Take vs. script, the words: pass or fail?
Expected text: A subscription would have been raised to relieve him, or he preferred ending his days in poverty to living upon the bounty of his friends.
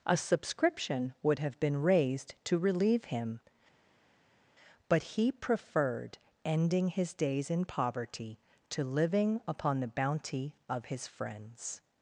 fail